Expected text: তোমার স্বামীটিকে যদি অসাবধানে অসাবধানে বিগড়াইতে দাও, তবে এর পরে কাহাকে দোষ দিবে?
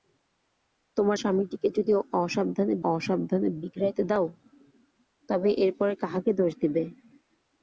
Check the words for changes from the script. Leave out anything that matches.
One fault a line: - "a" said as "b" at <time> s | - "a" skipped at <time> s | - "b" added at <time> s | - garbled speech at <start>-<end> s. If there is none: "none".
none